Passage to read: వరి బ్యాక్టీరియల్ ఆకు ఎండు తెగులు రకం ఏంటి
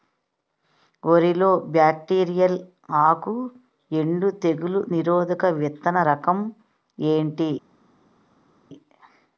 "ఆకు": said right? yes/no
yes